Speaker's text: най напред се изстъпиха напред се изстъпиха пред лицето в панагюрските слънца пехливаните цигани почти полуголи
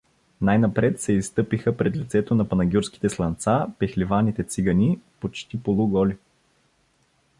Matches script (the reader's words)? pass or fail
fail